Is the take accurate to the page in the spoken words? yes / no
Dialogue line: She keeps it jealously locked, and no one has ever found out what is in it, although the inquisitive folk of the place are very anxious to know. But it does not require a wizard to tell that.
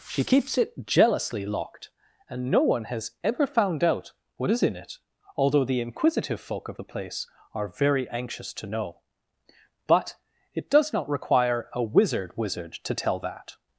no